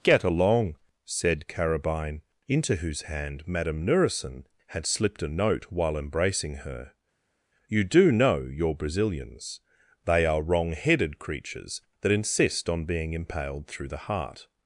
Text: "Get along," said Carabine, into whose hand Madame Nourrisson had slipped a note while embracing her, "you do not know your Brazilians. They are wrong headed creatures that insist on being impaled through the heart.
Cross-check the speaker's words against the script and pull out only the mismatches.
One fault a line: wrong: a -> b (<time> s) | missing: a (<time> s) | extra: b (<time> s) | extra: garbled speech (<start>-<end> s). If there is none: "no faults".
missing: not (8.1 s)